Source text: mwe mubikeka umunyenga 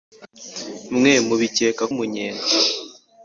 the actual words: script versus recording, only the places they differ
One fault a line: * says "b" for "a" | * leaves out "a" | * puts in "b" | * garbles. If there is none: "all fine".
all fine